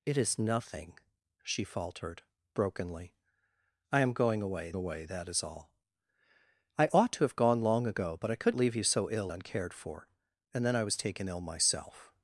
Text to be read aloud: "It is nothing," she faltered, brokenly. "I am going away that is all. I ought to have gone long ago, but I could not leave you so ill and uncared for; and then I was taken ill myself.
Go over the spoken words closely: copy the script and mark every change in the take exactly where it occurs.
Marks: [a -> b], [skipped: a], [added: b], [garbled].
"It is nothing," she faltered, brokenly. "I am going away [added: away] that is all. I ought to have gone long ago, but I could [skipped: not] leave you so ill [skipped: and] uncared for; and then I was taken ill myself.